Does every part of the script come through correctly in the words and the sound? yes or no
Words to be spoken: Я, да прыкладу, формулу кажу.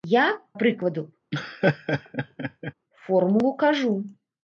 no